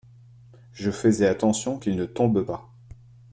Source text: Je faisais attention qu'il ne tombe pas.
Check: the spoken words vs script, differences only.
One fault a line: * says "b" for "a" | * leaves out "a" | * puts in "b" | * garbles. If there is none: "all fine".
all fine